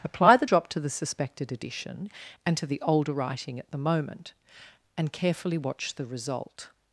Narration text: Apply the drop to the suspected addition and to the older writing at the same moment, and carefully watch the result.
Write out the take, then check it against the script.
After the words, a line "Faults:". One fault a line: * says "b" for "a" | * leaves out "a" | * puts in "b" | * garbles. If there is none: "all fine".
Apply the drop to the suspected addition and to the older writing at the moment, and carefully watch the result.
Faults:
* leaves out "same"